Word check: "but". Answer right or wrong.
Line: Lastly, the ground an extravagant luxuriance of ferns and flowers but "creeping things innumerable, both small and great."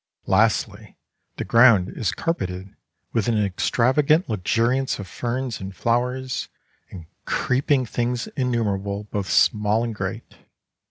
wrong